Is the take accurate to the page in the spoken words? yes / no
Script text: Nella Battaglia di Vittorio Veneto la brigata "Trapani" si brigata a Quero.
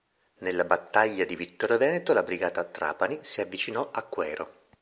no